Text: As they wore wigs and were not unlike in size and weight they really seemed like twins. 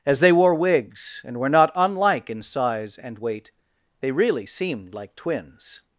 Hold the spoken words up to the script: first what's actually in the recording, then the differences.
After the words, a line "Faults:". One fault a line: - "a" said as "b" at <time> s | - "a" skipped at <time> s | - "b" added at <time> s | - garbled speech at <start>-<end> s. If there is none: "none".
As they wore wigs and were not unlike in size and weight they really seemed like twins.
Faults:
none